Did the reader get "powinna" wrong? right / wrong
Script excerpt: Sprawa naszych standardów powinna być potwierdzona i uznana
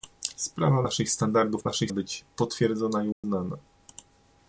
wrong